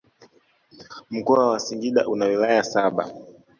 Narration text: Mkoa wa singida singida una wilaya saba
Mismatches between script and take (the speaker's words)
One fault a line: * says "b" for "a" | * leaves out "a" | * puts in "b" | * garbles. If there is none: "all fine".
* leaves out "singida"